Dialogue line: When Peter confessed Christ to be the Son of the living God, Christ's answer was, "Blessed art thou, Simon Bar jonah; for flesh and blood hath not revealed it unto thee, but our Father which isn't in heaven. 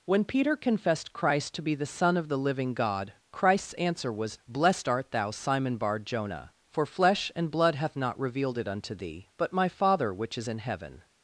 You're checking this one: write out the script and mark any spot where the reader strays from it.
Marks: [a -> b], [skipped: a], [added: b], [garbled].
When Peter confessed Christ to be the Son of the living God, Christ's answer was, "Blessed art thou, Simon Bar jonah; for flesh and blood hath not revealed it unto thee, but [our -> my] Father which [isn't -> is] in heaven.